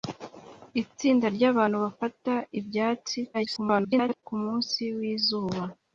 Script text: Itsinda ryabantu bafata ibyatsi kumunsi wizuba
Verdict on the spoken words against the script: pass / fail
fail